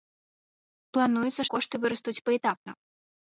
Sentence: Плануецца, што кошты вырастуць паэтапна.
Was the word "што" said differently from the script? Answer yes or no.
yes